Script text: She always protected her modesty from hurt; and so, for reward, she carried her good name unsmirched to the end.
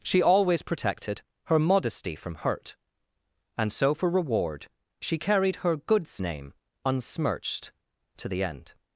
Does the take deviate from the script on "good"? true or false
true